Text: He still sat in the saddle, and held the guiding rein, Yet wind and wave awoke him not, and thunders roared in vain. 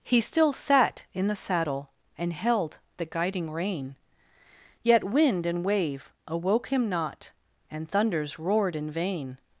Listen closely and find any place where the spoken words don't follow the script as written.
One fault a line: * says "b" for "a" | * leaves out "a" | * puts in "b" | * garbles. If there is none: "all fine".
all fine